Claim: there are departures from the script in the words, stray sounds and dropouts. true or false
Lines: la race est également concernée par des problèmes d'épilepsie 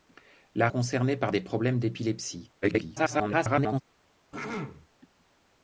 true